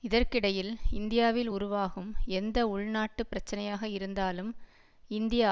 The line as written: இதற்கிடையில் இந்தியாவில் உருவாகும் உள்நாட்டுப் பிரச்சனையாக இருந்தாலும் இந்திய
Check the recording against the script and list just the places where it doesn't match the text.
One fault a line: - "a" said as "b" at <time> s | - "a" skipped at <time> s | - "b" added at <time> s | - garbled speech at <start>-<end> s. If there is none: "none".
- "எந்த" added at 2.3 s